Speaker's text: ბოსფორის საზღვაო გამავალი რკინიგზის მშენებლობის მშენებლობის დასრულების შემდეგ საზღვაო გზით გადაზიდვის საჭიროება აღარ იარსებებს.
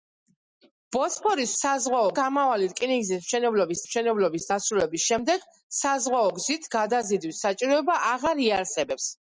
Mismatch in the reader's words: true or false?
false